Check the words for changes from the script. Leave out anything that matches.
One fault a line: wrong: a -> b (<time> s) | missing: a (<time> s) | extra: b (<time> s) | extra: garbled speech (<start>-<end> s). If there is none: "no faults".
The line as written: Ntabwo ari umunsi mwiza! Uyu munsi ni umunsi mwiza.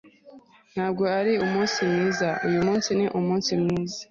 no faults